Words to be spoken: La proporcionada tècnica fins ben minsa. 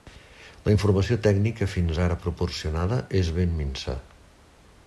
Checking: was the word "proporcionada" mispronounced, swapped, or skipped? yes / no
yes